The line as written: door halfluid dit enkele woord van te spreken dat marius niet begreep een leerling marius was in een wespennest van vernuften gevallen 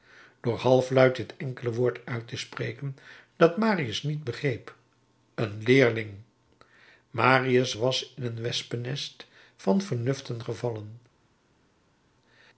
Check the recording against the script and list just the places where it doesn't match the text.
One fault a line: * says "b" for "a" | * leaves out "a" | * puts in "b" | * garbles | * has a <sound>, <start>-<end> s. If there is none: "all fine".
* says "uit" for "van"